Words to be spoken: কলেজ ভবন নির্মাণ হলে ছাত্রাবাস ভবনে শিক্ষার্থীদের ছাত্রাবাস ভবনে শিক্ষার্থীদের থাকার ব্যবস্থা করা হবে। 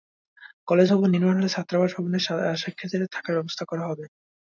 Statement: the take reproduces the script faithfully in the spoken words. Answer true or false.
false